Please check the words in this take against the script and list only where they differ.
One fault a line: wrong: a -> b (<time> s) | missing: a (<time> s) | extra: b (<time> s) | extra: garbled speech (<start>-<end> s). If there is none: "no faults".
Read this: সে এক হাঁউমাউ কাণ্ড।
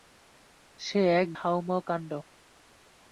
no faults